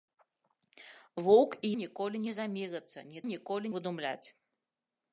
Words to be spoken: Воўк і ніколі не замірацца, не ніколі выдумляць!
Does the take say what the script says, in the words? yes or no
yes